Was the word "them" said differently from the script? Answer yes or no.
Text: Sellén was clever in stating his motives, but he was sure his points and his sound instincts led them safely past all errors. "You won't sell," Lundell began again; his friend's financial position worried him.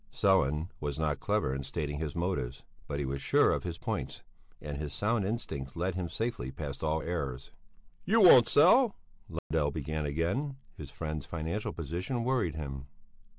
yes